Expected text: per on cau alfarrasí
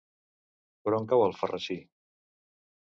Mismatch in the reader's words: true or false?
false